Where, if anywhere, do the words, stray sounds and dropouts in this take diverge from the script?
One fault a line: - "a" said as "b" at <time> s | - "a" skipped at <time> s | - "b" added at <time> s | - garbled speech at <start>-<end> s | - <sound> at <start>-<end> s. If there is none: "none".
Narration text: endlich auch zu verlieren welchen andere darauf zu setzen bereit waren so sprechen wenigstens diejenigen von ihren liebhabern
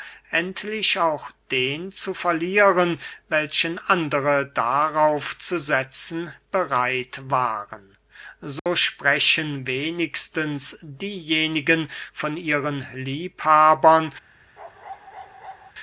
- "den" added at 1.5 s
- dropout at 8.6-8.7 s
- bark at 14.6-15.7 s